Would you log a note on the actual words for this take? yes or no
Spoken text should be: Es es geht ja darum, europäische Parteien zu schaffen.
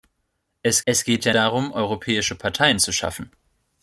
no